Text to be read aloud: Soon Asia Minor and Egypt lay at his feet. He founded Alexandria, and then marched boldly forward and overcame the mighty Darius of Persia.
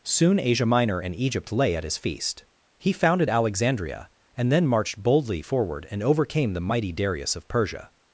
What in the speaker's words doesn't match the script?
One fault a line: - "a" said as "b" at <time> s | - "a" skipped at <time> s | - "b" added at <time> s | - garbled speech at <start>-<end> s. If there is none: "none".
- "feet" said as "feast" at 2.0 s